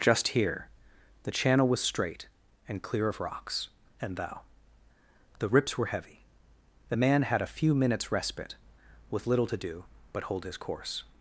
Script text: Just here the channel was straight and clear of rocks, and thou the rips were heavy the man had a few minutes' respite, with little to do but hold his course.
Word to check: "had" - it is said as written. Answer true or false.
true